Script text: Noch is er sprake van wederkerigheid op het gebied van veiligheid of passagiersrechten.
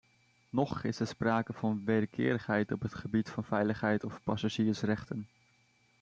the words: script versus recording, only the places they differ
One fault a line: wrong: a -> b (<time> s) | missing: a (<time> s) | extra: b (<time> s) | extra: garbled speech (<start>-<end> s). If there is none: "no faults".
no faults